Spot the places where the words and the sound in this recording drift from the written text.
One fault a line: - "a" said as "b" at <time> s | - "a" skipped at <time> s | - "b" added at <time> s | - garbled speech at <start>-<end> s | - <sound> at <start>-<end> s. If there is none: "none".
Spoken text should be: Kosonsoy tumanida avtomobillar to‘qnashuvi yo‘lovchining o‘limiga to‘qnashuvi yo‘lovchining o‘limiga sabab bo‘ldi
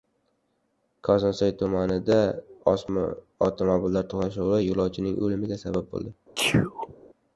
- "to‘qnashuvi yo‘lovchining o‘limiga" skipped at 5.7 s
- sneeze at 6.4-6.9 s